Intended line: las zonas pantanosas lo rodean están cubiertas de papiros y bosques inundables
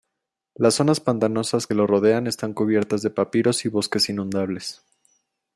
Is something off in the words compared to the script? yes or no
no